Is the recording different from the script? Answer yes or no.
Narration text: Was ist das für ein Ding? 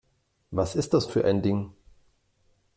no